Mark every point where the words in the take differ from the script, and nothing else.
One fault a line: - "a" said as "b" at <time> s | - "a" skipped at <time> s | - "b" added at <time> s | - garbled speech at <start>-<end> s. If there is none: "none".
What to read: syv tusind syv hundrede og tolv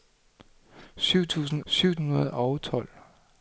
none